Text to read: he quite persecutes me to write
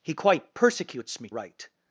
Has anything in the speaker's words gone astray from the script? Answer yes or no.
yes